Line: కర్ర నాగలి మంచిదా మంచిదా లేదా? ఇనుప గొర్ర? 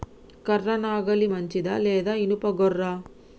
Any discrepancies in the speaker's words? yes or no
yes